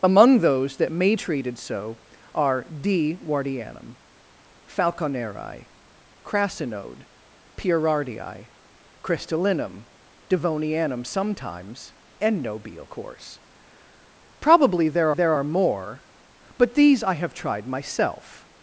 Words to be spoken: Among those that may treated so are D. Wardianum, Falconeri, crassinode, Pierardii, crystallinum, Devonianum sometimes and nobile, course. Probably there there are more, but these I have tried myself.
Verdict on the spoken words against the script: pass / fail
pass